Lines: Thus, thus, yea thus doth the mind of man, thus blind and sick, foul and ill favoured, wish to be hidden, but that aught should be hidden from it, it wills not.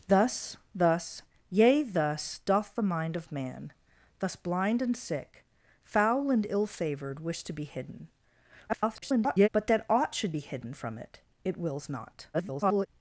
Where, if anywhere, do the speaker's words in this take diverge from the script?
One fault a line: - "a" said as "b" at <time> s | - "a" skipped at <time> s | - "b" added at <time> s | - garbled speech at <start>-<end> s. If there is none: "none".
- garbled speech at 8.7-9.5 s
- garbled speech at 12.3-12.9 s